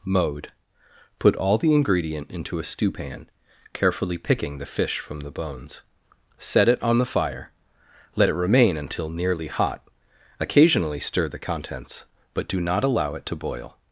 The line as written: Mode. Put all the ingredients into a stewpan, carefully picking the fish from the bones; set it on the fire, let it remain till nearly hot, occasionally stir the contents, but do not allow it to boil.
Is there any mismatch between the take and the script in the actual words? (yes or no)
yes